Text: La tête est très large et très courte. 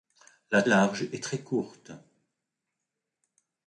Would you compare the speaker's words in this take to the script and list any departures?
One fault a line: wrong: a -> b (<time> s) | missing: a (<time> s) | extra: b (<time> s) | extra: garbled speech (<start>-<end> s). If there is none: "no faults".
missing: tête est très (0.6 s)